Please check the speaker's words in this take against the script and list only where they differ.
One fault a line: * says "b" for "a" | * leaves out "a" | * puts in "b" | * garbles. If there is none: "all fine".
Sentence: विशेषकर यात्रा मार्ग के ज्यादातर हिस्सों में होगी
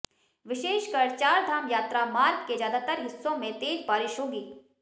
* puts in "चारधाम"
* puts in "तेज बारिश"